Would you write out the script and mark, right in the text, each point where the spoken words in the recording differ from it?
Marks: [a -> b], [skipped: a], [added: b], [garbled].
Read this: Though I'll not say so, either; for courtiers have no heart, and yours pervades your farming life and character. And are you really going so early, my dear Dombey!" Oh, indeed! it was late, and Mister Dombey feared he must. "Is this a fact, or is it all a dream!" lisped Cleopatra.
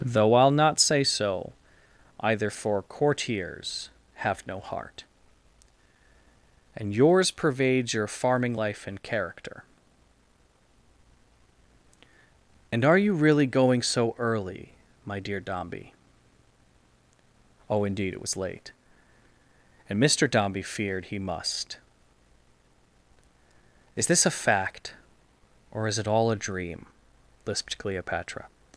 Though I'll not say so, either; for courtiers have no heart, and yours pervades your farming life and character. And are you really going so early, my dear Dombey!" Oh, indeed! it was late, and Mister Dombey feared he must. "Is this a fact, or is it all a dream!" lisped Cleopatra.